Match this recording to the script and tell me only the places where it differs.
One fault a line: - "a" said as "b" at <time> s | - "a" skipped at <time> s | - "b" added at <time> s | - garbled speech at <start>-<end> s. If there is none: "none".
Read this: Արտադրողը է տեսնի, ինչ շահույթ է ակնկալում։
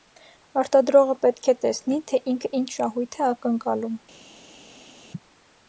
- "պետք" added at 1.2 s
- "թե ինքը" added at 2.1 s